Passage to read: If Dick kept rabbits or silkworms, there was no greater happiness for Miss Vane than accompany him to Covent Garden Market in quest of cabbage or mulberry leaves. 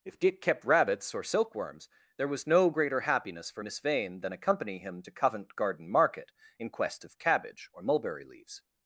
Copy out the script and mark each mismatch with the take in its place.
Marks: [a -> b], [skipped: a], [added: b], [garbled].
If Dick kept rabbits or silkworms, there was no greater happiness for Miss Vane than accompany him to Covent Garden Market in quest of cabbage or mulberry leaves.